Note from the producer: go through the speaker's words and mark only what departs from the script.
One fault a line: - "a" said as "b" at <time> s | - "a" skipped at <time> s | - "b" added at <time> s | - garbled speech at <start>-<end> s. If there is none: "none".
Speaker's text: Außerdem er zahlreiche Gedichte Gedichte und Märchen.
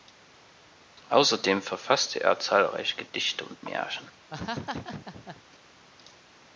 - "verfasste" added at 1.6 s
- "Gedichte" skipped at 3.5 s